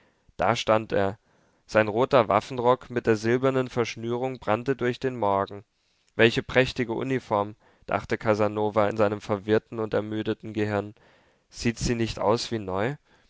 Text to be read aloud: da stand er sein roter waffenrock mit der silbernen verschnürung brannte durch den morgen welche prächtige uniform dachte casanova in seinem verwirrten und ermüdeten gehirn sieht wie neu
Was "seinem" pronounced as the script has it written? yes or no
yes